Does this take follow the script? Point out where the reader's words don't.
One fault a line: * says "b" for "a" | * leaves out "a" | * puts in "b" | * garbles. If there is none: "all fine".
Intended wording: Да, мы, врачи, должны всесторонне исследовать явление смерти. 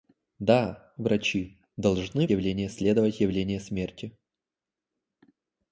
* leaves out "мы"
* says "явление" for "всесторонне"